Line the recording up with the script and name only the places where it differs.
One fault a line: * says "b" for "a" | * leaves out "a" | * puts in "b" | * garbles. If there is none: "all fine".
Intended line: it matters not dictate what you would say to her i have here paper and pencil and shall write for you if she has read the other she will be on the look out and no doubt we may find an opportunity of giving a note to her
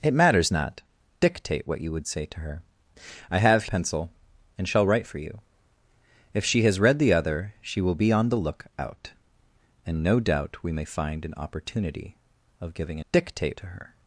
* leaves out "here paper and"
* says "dictate" for "note"